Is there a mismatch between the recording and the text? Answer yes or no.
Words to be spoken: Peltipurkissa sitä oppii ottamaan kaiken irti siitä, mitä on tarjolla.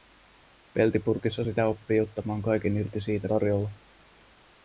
yes